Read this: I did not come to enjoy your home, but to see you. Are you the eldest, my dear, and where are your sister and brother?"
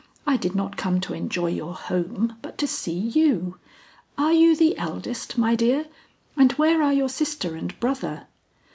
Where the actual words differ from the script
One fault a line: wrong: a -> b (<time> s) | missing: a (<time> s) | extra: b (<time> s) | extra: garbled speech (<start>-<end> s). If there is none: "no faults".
no faults